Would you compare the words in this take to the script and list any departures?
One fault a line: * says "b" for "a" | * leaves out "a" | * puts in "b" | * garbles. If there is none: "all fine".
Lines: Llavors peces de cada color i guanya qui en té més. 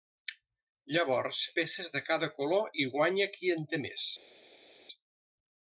all fine